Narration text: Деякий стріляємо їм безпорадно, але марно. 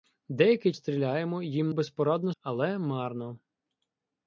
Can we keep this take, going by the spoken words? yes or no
yes